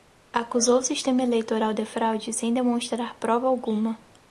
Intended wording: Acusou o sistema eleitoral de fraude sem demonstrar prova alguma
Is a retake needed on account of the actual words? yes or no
no